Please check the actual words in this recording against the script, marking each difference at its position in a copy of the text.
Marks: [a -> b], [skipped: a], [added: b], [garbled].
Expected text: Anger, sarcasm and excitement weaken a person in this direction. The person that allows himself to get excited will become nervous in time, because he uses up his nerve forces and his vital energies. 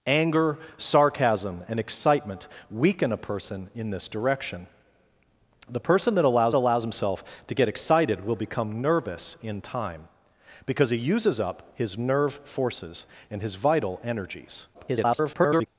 Anger, sarcasm and excitement weaken a person in this direction. The person that allows [added: allows] himself to get excited will become nervous in time, because he uses up his nerve forces and his vital energies. [garbled]